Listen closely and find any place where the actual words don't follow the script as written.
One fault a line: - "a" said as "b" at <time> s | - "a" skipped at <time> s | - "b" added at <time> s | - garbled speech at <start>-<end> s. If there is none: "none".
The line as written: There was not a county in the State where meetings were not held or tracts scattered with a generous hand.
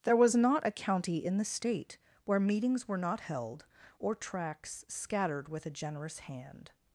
none